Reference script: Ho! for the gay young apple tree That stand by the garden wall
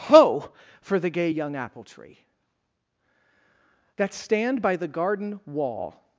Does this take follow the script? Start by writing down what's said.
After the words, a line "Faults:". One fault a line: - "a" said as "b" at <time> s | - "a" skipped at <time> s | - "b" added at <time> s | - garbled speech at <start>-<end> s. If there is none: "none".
Ho! for the gay young apple tree That stand by the garden wall
Faults:
none